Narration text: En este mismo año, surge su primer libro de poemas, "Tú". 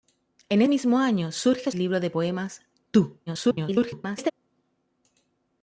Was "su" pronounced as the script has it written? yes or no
no